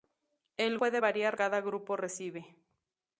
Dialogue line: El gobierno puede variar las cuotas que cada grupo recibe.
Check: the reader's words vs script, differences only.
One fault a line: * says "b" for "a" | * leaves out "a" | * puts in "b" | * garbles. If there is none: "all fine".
* leaves out "gobierno"
* leaves out "las cuotas que"